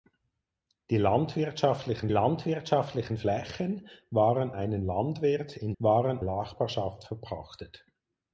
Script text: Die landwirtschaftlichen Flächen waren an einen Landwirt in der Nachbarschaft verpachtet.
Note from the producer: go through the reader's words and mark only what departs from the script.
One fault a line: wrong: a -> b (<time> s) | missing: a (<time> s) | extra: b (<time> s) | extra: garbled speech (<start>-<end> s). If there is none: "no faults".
extra: landwirtschaftlichen (2.1 s)
missing: an (4.5 s)
wrong: der -> waren (5.8 s)